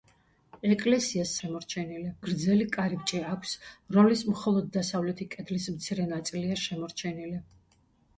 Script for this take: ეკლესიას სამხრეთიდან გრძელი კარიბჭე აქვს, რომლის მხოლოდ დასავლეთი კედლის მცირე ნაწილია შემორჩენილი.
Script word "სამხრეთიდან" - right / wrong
wrong